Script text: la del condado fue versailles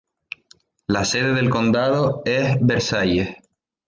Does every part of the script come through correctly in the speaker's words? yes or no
no